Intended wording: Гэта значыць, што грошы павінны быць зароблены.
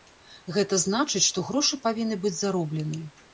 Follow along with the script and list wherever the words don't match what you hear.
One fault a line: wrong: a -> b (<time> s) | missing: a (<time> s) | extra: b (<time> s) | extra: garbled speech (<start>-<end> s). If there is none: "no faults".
no faults